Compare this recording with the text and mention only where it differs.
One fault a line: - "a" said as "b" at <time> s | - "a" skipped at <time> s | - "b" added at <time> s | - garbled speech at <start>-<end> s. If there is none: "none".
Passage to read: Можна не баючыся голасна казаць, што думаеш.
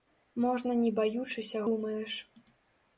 - "голасна казаць што" skipped at 1.6 s